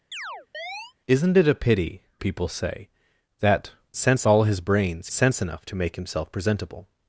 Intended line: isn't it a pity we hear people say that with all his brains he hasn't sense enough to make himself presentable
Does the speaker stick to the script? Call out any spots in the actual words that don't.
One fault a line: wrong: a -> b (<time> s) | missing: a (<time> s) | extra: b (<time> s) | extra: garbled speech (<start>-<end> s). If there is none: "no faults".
missing: we hear (2.1 s)
wrong: with -> sense (4.0 s)
missing: he hasn't (5.1 s)